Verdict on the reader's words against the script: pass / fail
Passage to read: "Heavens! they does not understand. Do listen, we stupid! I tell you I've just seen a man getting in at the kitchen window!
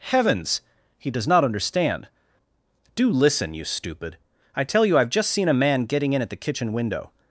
fail